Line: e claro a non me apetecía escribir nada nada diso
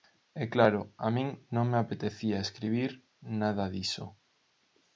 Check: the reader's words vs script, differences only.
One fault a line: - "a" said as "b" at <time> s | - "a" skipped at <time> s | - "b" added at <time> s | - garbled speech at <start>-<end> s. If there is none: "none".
- "min" added at 1.1 s
- "nada" skipped at 3.6 s